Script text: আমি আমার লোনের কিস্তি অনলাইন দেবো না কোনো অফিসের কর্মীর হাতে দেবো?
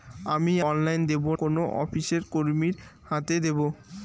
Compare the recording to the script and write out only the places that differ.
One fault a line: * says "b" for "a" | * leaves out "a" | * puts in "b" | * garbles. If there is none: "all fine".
* leaves out "আমার লোনের কিস্তি"
* leaves out "না"